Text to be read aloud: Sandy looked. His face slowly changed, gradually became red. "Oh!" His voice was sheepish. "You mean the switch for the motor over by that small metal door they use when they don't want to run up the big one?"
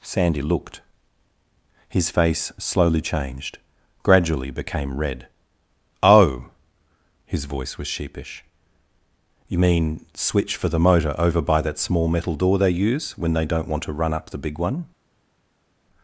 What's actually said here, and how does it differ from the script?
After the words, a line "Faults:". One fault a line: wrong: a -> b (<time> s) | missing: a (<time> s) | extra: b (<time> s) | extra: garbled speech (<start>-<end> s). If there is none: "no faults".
Sandy looked. His face slowly changed, gradually became red. "Oh!" His voice was sheepish. "You mean switch for the motor over by that small metal door they use when they don't want to run up the big one?"
Faults:
missing: the (10.1 s)